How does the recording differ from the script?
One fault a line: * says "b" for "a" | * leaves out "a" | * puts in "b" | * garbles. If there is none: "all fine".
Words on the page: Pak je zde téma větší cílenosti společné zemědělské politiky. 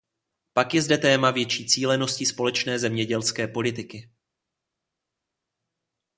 all fine